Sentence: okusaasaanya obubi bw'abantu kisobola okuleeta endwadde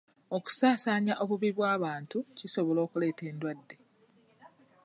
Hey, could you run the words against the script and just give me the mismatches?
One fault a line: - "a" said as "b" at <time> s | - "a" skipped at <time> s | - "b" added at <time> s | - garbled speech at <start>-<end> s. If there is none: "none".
none